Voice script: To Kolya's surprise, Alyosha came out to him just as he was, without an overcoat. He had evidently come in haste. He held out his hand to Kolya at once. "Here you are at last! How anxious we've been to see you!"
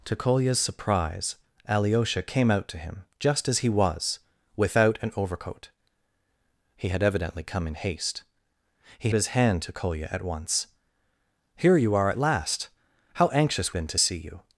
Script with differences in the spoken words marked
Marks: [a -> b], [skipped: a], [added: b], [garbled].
To Kolya's surprise, Alyosha came out to him just as he was, without an overcoat. He had evidently come in haste. He [skipped: held out] his hand to Kolya at once. "Here you are at last! How anxious [skipped: we've] been to see you!"